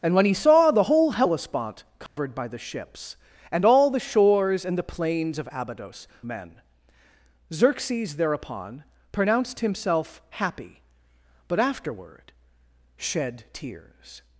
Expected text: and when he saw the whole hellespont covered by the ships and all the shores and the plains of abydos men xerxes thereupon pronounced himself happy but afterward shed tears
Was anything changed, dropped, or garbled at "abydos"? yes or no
no